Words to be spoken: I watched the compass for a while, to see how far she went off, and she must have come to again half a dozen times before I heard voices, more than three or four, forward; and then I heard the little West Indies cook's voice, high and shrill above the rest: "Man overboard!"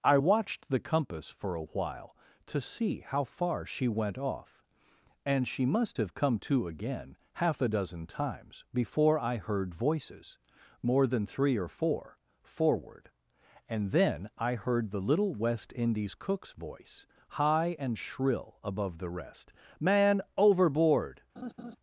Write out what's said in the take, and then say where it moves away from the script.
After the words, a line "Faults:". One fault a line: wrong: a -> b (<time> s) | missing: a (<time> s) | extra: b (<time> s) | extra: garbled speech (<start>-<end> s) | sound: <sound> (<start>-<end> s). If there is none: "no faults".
I watched the compass for a while, to see how far she went off, and she must have come to again half a dozen times before I heard voices, more than three or four, forward; and then I heard the little West Indies cook's voice, high and shrill above the rest: "Man overboard!"
Faults:
sound: laugh (21.4-21.8 s)